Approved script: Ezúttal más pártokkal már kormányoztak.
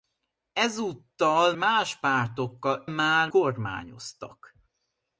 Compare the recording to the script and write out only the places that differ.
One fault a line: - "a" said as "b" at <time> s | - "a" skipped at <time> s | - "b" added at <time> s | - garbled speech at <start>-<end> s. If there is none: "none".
none